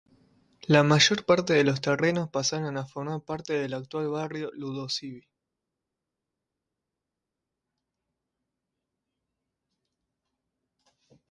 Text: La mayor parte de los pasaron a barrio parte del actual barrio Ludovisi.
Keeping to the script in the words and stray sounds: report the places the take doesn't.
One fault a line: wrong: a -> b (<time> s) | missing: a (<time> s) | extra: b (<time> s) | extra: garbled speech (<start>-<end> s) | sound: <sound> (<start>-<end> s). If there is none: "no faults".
extra: terrenos (1.8 s)
wrong: barrio -> formar (2.9 s)